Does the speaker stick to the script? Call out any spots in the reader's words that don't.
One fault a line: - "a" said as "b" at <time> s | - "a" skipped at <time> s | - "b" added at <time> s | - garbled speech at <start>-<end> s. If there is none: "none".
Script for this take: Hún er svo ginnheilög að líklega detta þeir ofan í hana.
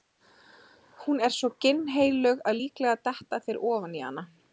none